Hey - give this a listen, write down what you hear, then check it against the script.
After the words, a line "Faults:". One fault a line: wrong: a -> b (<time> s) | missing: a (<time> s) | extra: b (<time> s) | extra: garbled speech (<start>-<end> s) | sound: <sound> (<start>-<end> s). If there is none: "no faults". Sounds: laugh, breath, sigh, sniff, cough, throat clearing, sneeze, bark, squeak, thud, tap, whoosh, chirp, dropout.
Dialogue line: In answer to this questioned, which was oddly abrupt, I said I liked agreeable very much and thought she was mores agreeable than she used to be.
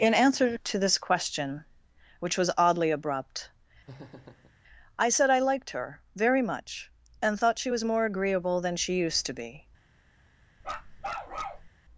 In answer to this question, which was oddly abrupt, I said I liked her very much and thought she was more agreeable than she used to be.
Faults:
wrong: questioned -> question (1.0 s)
sound: laugh (3.9-4.6 s)
wrong: agreeable -> her (5.7 s)
wrong: mores -> more (7.8 s)
sound: bark (10.6-11.7 s)